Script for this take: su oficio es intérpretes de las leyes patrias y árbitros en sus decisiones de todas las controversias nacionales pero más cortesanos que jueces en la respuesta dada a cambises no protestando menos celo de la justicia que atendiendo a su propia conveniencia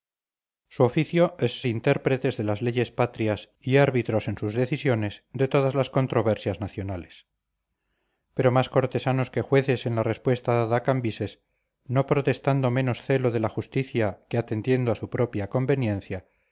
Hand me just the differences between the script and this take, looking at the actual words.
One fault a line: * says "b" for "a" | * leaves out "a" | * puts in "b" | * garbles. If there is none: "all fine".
all fine